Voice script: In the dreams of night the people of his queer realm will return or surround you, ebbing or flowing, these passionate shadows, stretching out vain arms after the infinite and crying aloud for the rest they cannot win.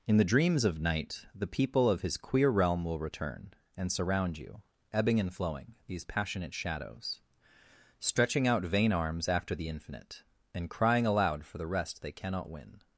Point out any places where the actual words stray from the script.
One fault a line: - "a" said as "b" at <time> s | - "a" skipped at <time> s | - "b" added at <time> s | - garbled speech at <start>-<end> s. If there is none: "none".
- "or" said as "and" at 3.8 s
- "or" said as "and" at 5.2 s